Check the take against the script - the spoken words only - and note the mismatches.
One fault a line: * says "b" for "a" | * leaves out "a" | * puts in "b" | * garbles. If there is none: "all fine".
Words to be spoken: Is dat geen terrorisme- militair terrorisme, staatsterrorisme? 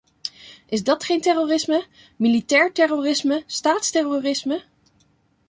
all fine